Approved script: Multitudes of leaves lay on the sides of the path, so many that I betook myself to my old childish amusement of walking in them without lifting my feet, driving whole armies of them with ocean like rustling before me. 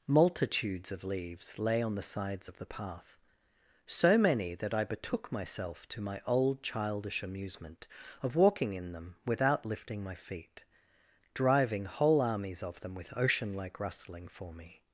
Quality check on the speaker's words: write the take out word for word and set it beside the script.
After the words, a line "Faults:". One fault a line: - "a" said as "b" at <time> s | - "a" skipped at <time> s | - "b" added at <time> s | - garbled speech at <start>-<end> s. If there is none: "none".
Multitudes of leaves lay on the sides of the path, so many that I betook myself to my old childish amusement of walking in them without lifting my feet, driving whole armies of them with ocean like rustling for me.
Faults:
- "before" said as "for" at 14.3 s